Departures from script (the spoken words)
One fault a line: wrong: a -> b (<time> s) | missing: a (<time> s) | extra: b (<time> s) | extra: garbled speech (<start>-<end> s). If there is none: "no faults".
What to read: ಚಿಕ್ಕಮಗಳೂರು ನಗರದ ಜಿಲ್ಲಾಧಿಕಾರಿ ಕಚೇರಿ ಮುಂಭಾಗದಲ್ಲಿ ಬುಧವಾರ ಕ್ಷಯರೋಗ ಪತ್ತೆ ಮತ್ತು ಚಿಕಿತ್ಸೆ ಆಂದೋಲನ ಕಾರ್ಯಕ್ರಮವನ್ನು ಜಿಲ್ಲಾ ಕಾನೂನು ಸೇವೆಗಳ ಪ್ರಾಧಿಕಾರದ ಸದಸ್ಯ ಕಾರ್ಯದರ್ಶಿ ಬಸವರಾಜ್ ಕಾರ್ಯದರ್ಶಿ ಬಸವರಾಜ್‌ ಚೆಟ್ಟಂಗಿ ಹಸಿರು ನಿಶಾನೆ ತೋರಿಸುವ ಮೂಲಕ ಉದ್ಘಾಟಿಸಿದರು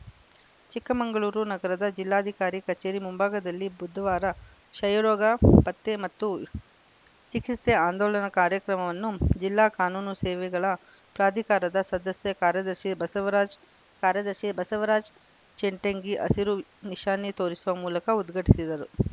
no faults